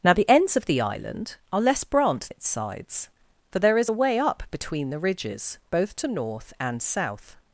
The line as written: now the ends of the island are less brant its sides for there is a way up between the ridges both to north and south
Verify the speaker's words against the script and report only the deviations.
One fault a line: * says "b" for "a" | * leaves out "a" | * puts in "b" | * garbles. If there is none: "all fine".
all fine